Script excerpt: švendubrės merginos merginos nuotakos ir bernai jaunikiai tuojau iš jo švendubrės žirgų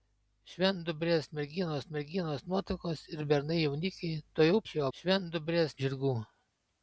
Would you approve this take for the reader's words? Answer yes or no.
yes